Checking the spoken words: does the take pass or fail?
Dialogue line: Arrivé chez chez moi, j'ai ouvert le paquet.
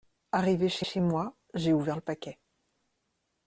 pass